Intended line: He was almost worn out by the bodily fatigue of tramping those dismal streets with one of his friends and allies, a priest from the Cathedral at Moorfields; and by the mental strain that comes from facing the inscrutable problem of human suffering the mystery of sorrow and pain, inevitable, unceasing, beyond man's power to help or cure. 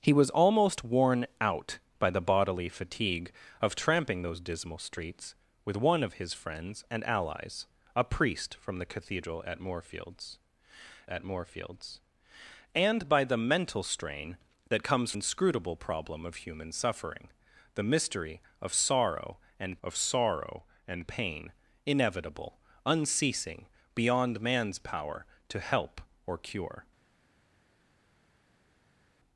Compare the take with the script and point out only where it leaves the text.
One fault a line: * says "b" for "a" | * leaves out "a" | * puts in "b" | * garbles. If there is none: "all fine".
* puts in "at Moorfields"
* leaves out "from facing the"
* puts in "of sorrow and"